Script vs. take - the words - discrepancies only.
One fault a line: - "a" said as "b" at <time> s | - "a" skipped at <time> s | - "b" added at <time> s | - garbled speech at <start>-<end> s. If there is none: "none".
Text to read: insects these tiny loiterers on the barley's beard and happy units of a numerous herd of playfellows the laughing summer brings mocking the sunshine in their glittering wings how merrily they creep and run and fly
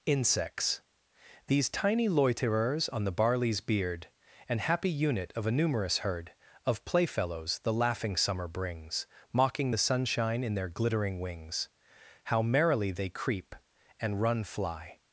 - "units" said as "unit" at 4.9 s
- "and" skipped at 14.4 s